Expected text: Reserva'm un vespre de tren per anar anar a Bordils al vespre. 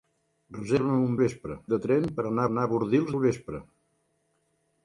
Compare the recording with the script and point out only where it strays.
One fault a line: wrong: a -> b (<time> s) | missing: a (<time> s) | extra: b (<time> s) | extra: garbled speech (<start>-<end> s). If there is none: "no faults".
no faults